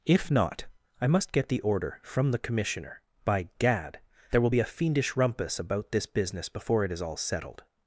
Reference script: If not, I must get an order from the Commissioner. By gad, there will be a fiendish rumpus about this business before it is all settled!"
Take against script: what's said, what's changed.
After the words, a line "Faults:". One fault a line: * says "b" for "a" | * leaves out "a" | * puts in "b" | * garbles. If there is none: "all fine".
If not, I must get the order from the Commissioner. By gad, there will be a fiendish rumpus about this business before it is all settled!"
Faults:
* says "the" for "an"